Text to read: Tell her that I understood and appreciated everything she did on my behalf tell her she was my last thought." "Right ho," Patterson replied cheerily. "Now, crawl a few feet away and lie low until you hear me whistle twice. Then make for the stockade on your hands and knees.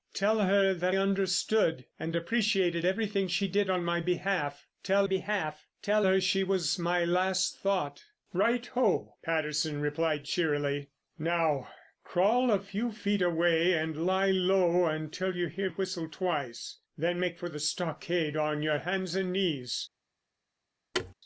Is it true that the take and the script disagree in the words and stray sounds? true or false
true